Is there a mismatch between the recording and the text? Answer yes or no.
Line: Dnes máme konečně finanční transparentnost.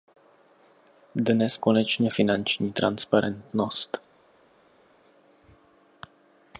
yes